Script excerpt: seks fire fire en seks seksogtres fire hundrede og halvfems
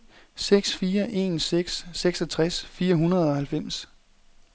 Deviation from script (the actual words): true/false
true